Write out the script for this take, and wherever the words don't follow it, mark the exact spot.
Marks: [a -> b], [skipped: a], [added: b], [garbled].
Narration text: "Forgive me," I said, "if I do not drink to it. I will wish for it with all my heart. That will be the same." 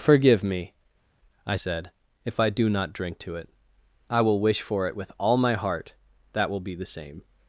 "Forgive me," I said, "if I do not drink to it. I will wish for it with all my heart. That will be the same."